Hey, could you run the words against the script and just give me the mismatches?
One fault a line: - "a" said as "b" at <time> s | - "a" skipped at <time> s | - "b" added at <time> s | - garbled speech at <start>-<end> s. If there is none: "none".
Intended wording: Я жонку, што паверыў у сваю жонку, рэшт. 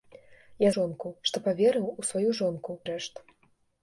none